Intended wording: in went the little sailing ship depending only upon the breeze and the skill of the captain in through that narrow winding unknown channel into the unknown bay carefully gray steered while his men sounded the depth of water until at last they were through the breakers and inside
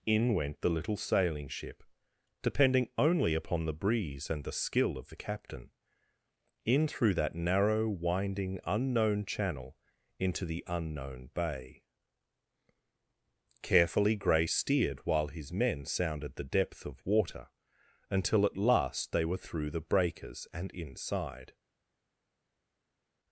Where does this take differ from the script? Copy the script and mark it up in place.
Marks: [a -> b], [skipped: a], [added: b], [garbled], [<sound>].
in went the little sailing ship depending only upon the breeze and the skill of the captain in through that narrow winding unknown channel into the unknown bay carefully gray steered while his men sounded the depth of water until at last they were through the breakers and inside